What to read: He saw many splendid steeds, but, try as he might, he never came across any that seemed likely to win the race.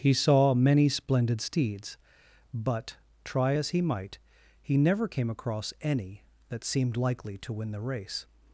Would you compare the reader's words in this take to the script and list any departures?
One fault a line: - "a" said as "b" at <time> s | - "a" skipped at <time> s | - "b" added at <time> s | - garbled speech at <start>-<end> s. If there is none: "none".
none